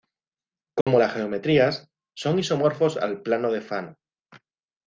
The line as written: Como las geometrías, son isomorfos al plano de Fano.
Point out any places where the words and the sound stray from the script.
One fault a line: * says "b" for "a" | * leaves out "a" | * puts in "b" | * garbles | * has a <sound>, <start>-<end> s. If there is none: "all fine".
* has a dropout, 0.8-0.9 s